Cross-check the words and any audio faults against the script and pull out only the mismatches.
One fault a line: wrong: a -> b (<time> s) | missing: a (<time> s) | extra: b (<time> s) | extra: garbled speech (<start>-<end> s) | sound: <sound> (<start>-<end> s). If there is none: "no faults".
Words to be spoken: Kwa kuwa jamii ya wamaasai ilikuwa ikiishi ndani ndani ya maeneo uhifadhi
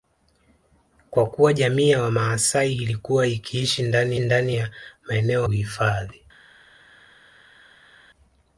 no faults